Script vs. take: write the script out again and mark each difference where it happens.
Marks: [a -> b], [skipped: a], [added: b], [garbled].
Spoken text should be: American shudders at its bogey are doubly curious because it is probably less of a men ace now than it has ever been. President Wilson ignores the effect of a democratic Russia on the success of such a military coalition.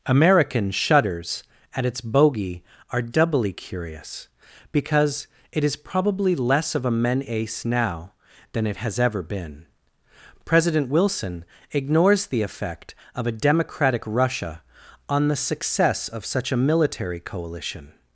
American shudders at its bogey are doubly curious because it is probably less of a men ace now than it has ever been. President Wilson ignores the effect of a democratic Russia on the success of such a military coalition.